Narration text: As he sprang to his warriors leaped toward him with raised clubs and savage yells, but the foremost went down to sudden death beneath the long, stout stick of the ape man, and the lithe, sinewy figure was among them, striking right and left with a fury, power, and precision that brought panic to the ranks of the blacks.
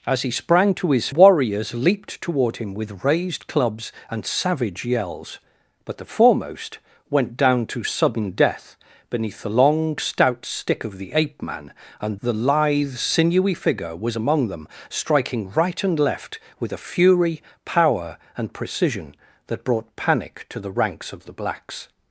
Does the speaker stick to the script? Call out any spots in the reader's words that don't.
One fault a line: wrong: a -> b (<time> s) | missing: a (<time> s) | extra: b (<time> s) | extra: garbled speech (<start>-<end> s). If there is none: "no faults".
no faults